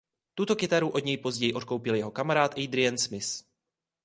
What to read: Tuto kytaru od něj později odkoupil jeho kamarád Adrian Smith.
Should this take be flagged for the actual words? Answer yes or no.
no